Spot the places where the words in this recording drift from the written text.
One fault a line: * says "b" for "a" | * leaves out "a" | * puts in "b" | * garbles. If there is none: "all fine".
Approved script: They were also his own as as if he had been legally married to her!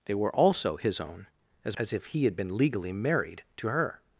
all fine